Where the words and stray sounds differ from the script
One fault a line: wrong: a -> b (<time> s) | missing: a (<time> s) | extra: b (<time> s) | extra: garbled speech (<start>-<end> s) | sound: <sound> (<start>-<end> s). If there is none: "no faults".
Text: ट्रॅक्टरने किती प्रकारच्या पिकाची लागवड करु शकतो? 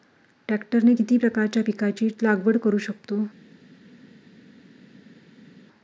no faults